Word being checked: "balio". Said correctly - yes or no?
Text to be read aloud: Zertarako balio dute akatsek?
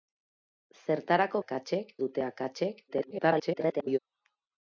no